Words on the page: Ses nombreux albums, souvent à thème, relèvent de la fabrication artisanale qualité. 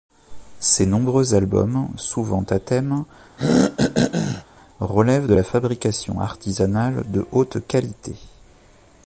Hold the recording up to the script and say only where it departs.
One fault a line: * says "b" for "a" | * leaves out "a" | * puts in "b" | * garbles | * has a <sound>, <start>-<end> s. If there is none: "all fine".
* has a throat clearing, 3.4-4.4 s
* puts in "de haute"